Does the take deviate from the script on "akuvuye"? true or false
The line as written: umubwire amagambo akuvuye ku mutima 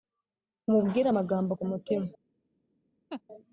true